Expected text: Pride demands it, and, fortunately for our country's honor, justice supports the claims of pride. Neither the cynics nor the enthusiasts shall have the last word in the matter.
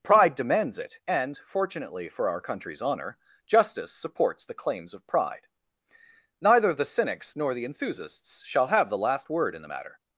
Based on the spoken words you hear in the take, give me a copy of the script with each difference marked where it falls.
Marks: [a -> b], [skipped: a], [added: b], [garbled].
Pride demands it, and, fortunately for our country's honor, justice supports the claims of pride. Neither the cynics nor the enthusiasts shall have the last word in the matter.